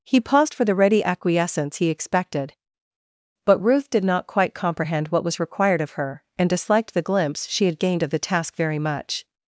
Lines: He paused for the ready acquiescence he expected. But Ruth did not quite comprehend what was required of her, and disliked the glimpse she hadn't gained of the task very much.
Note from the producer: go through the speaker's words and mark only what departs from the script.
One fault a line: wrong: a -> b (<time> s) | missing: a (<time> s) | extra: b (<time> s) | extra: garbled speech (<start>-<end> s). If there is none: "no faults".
wrong: hadn't -> had (7.7 s)